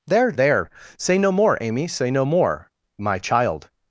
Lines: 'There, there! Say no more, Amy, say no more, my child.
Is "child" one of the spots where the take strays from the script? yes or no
no